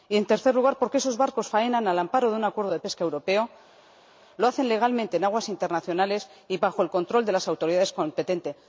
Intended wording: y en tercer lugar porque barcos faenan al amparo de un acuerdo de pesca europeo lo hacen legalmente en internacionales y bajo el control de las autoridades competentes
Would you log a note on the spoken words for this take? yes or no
yes